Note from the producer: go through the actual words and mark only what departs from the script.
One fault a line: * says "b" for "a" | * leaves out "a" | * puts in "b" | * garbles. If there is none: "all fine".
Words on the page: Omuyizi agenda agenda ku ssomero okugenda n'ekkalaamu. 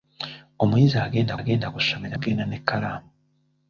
all fine